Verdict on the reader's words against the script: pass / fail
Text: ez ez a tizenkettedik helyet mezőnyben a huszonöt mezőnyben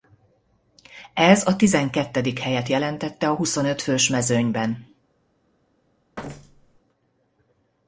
fail